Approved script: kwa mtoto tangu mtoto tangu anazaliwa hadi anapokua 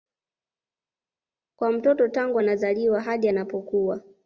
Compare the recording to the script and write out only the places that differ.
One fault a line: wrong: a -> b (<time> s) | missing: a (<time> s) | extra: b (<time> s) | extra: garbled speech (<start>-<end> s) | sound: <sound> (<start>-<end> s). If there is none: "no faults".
missing: mtoto tangu (2.4 s)